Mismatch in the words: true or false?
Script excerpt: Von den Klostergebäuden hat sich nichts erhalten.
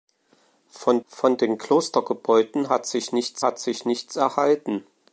true